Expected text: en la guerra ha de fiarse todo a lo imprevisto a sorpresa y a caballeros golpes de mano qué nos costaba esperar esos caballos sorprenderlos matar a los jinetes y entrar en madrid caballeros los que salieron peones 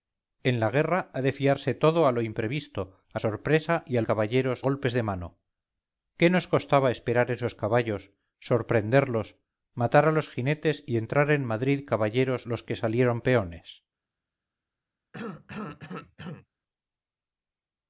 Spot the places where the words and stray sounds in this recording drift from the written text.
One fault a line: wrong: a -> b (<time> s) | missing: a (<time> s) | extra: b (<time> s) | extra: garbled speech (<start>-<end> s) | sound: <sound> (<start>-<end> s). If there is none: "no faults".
sound: cough (15.1-16.5 s)